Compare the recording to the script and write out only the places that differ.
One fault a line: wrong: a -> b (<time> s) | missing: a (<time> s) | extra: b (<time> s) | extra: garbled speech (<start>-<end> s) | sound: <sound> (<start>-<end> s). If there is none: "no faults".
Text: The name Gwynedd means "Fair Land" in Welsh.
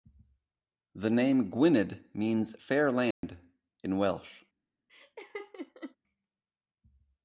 sound: dropout (3.1-3.2 s)
sound: laugh (4.9-6.0 s)